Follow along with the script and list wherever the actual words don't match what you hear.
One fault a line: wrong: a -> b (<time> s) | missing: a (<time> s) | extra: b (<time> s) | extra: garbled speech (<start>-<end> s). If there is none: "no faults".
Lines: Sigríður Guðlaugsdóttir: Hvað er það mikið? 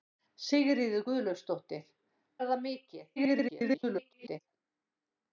missing: Hvað (1.9 s)
extra: garbled speech (3.2-4.4 s)